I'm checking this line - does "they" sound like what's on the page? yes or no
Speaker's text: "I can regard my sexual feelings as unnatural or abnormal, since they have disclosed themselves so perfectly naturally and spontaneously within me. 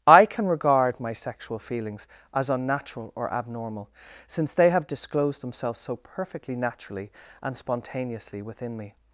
yes